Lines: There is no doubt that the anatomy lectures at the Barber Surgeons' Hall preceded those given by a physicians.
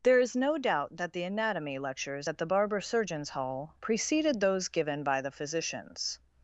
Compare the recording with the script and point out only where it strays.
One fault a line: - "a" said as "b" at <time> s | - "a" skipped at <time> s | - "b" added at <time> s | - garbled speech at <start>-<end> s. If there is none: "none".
- "a" said as "the" at 5.2 s